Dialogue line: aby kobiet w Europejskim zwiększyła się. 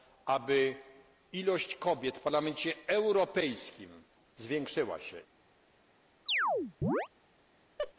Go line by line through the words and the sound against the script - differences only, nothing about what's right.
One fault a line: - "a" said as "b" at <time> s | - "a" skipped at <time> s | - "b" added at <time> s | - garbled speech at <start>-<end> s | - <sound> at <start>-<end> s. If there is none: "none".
- "ilość" added at 1.3 s
- "Parlamencie" added at 2.2 s
- chirp at 6.3-7.1 s
- laugh at 7.8-7.9 s